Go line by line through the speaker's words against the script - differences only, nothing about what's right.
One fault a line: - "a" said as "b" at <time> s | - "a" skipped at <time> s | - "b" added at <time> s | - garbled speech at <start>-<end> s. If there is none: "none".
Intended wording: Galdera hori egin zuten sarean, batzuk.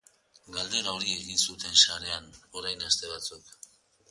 - "orain aste" added at 2.6 s